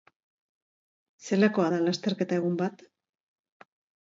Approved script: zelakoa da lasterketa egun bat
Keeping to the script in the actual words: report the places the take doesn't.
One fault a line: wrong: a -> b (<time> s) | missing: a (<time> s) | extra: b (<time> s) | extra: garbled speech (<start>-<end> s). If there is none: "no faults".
no faults